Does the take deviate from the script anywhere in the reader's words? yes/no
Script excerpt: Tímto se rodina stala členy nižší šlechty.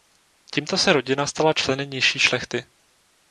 no